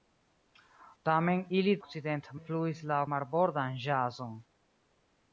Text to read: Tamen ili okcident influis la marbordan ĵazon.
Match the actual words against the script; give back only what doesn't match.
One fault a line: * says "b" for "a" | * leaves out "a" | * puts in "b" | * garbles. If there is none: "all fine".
all fine